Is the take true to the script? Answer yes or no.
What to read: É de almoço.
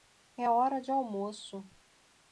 no